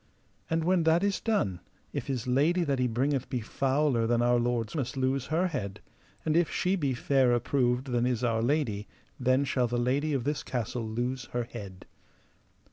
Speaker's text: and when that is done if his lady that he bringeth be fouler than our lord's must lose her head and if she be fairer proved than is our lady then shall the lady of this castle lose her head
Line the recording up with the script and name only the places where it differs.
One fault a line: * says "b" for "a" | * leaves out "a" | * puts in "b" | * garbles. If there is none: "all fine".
all fine